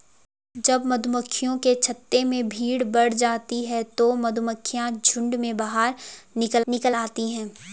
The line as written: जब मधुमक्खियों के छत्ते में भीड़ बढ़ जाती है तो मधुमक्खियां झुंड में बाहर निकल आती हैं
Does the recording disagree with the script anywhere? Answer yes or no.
yes